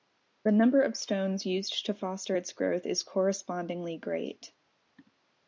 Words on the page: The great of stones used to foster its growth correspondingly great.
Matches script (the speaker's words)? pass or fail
fail